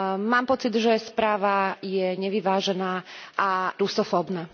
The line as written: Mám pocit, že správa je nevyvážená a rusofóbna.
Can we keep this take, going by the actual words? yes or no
yes